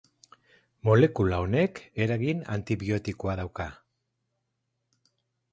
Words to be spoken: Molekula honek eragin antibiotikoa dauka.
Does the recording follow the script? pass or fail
pass